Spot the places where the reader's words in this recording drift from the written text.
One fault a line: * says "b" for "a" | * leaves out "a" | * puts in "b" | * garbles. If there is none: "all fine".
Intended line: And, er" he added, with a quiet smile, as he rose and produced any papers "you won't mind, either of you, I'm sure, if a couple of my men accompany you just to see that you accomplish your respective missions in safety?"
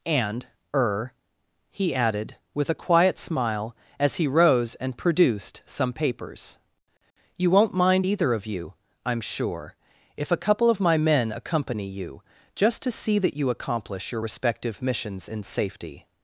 * says "some" for "any"